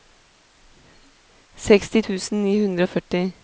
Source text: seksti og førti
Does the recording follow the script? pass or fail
fail